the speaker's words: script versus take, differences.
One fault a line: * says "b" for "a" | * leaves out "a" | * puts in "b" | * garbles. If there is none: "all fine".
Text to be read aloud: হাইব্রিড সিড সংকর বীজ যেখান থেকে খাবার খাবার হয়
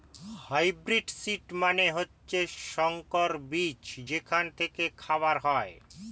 * puts in "মানে হচ্ছে"
* leaves out "খাবার"